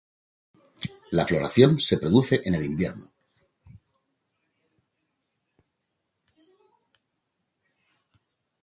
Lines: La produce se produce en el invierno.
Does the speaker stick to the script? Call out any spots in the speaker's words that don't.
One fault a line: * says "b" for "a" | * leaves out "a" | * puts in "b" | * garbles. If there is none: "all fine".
* says "floración" for "produce"